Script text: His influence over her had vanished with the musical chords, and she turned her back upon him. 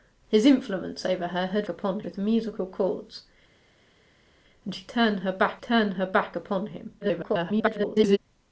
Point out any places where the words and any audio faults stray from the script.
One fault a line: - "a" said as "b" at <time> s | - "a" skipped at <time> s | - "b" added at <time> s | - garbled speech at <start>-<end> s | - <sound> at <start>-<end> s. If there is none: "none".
- "vanished" said as "upon" at 1.7 s
- "turned her back" added at 5.6 s
- garbled speech at 7.0-8.2 s